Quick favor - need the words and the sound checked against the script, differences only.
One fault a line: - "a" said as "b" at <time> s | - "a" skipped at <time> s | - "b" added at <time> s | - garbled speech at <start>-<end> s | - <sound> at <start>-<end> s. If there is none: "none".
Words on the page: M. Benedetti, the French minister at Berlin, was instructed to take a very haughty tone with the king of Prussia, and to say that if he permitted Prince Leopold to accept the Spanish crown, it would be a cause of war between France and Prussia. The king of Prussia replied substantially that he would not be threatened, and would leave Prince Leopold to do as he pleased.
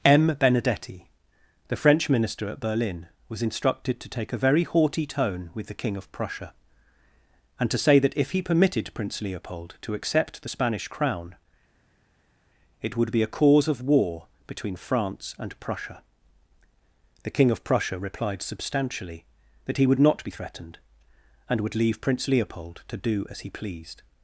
none